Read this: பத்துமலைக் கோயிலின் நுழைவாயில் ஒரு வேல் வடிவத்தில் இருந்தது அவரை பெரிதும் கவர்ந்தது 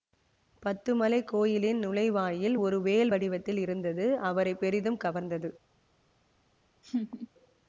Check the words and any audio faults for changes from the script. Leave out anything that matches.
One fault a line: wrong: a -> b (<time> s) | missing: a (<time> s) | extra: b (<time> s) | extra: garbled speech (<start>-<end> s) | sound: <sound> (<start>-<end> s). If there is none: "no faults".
sound: laugh (6.8-7.3 s)